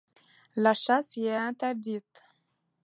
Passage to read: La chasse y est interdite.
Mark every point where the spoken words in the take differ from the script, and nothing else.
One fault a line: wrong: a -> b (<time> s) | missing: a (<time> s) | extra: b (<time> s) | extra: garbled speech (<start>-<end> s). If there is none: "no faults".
no faults